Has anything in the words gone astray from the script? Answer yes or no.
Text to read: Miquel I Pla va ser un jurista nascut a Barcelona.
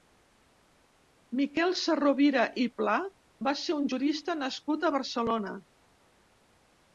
yes